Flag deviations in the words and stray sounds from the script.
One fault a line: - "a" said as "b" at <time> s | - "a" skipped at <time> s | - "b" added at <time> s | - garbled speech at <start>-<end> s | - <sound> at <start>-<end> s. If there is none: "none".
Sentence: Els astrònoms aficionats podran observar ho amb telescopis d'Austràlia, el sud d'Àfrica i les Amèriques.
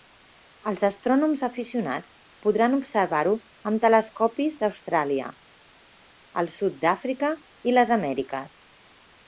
none